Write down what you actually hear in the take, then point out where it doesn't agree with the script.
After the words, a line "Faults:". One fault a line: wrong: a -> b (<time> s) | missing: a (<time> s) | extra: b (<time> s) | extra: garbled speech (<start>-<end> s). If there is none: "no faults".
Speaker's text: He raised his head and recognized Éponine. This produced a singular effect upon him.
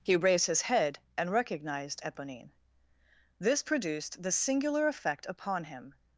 He raised his head and recognized Éponine. This produced the singular effect upon him.
Faults:
wrong: a -> the (4.2 s)